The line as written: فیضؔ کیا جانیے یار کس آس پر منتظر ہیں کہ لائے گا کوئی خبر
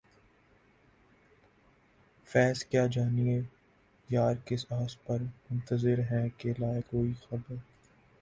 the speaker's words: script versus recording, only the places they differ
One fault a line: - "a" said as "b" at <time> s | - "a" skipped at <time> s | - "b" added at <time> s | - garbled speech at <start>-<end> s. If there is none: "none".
- "گا" skipped at 6.8 s